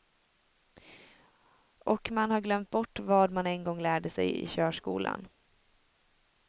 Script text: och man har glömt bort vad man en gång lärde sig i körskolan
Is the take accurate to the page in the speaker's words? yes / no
yes